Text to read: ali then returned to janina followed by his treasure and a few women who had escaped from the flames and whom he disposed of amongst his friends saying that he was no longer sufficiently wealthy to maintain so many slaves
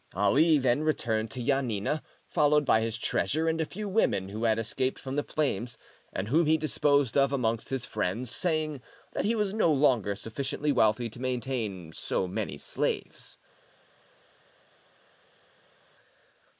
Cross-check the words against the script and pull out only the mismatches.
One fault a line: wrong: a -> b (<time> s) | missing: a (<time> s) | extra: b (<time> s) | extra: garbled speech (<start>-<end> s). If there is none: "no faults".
no faults